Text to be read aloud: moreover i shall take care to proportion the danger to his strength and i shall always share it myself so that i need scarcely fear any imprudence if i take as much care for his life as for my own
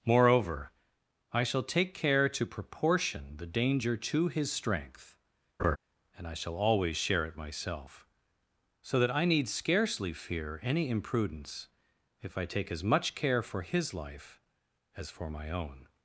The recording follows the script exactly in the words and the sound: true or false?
false